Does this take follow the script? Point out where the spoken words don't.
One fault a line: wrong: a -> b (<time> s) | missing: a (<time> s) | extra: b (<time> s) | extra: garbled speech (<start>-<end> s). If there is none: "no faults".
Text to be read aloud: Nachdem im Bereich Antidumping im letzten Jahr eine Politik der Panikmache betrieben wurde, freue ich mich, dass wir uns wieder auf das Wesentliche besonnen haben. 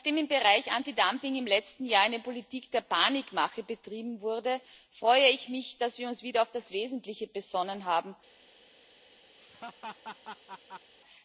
no faults